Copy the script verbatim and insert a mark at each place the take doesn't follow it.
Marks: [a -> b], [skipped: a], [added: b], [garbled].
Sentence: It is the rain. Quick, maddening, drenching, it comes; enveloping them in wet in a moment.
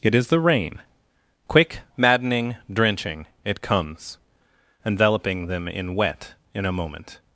It is the rain. Quick, maddening, drenching, it comes; enveloping them in wet in a moment.